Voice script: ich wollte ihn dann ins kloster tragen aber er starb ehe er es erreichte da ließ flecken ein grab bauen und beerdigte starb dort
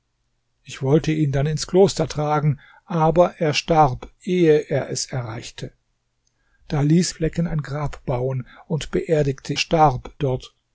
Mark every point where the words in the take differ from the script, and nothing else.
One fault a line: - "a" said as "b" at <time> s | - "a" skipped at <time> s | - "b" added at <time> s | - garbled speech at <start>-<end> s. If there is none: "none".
none